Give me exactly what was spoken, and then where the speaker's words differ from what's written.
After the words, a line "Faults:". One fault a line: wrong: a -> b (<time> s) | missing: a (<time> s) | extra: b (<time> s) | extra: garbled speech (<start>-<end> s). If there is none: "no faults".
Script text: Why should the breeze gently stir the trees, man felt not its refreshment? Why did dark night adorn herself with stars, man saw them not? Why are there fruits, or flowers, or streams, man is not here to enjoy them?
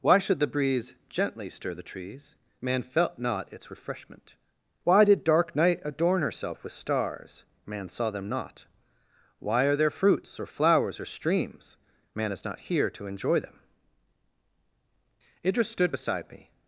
Why should the breeze gently stir the trees, man felt not its refreshment? Why did dark night adorn herself with stars, man saw them not? Why are there fruits, or flowers, or streams, man is not here to enjoy them? Idris stood beside me
Faults:
extra: Idris stood beside me (15.4 s)